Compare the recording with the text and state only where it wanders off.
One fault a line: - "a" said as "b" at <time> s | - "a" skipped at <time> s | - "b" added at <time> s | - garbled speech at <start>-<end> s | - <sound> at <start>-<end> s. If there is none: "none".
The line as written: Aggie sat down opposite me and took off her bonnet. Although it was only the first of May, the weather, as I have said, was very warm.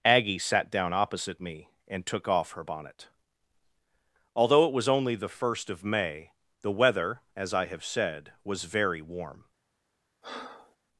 - breath at 10.2-10.8 s